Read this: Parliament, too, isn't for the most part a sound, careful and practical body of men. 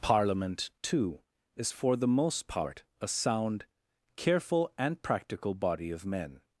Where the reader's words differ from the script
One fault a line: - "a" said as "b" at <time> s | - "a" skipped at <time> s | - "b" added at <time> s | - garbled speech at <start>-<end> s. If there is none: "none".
- "isn't" said as "is" at 1.6 s